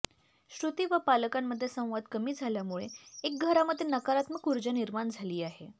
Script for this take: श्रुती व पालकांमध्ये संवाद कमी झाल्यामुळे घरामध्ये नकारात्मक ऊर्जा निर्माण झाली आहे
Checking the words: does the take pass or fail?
fail